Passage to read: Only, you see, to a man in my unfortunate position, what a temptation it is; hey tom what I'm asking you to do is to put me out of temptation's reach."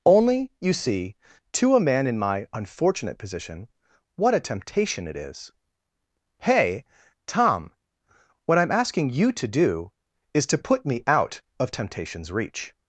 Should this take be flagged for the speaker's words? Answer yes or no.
no